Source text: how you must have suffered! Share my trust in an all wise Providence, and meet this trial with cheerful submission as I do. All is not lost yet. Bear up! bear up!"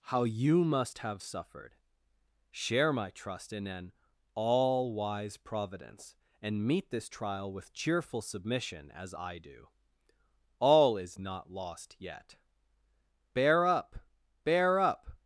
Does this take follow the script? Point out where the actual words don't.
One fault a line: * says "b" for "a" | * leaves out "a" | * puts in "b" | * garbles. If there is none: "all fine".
all fine